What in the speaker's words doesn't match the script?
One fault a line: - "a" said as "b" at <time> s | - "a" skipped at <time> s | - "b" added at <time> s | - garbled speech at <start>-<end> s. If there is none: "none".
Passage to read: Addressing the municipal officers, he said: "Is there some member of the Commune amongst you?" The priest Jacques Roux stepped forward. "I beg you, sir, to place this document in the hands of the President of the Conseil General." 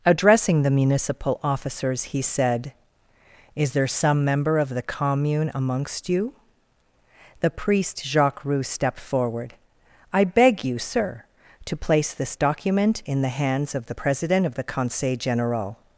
none